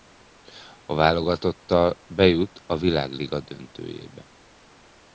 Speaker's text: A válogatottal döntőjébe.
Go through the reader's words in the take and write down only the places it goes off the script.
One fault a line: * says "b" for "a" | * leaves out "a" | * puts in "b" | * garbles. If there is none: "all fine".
* puts in "bejut a Világliga"